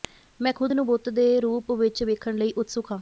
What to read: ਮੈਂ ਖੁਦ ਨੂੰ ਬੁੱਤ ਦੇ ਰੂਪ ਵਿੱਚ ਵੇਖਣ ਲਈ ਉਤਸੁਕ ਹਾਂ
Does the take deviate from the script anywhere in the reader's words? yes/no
no